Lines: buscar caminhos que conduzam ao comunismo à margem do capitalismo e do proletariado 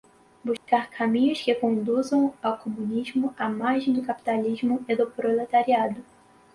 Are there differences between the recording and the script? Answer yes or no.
no